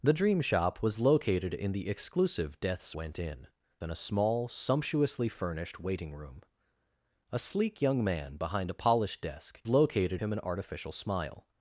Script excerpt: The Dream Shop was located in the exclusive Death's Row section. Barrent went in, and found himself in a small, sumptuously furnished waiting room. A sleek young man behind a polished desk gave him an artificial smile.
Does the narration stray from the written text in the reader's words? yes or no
yes